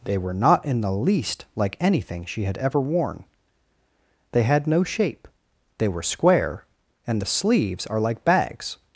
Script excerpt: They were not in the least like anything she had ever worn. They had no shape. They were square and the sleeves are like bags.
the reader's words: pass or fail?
pass